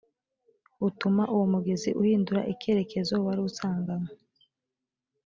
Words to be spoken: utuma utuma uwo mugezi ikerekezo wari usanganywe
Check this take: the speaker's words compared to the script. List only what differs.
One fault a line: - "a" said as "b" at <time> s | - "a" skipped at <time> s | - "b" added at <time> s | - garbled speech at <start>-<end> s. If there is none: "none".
- "utuma" skipped at 1.2 s
- "uhindura" added at 2.0 s